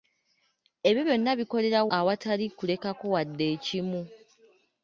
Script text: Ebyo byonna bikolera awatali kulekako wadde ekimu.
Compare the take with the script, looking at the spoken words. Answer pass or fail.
pass